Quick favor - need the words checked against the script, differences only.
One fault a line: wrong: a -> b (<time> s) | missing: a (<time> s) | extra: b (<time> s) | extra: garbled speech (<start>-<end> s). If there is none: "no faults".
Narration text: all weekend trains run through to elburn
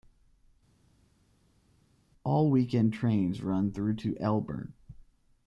no faults